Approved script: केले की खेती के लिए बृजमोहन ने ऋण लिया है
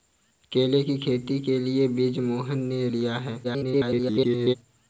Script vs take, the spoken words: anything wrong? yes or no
yes